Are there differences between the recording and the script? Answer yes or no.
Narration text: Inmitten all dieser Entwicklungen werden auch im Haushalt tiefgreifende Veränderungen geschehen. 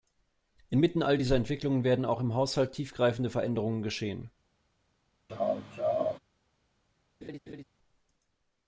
no